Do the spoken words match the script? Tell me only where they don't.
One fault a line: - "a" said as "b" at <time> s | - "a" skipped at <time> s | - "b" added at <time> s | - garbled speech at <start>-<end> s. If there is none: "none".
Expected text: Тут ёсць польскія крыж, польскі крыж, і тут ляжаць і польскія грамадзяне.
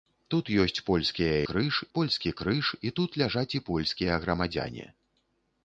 none